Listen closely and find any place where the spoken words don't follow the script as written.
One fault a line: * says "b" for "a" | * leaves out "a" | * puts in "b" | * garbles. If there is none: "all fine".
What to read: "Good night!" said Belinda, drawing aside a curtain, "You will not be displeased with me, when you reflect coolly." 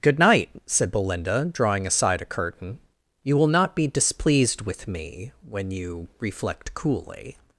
all fine